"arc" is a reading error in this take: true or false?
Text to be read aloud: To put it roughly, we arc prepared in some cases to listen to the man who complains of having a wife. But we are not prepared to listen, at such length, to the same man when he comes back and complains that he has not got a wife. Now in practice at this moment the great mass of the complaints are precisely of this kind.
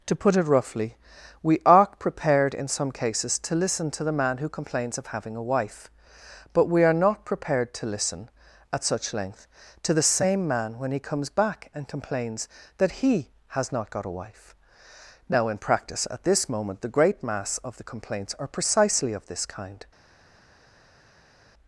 true